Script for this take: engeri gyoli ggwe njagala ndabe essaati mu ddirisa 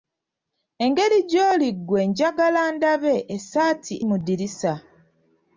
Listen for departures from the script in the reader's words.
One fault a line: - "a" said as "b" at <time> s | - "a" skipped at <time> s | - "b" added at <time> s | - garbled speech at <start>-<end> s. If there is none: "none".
none